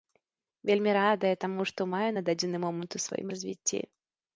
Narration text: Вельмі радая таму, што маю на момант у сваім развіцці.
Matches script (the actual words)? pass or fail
fail